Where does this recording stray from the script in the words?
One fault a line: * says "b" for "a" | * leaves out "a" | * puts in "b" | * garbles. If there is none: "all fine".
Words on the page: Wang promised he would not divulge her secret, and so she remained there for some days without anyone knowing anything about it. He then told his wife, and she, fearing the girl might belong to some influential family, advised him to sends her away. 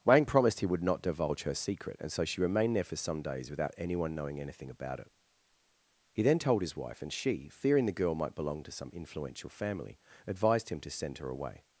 * says "send" for "sends"